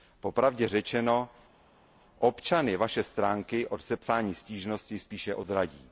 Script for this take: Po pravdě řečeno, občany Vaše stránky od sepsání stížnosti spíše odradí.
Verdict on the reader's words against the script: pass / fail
pass